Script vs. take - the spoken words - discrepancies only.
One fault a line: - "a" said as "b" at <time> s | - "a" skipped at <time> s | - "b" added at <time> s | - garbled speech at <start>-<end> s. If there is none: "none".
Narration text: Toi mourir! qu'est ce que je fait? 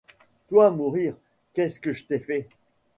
- "t'ai" added at 2.0 s